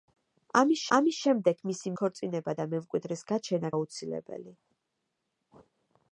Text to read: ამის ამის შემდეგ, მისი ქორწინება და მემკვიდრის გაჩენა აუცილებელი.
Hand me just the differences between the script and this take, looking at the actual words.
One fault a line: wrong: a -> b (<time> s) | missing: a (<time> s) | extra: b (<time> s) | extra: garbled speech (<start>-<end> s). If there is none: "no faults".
no faults